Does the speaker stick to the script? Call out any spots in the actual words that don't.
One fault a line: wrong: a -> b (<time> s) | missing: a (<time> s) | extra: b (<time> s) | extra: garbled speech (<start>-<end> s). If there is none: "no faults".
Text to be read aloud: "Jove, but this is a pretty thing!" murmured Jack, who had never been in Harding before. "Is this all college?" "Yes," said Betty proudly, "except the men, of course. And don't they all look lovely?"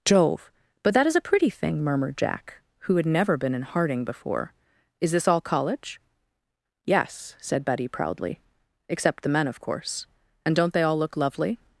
wrong: this -> that (0.9 s)